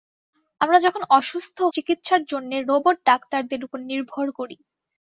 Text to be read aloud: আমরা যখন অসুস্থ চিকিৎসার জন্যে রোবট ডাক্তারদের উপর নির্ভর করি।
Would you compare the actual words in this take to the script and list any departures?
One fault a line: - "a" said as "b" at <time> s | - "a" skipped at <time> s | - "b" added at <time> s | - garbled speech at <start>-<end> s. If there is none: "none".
none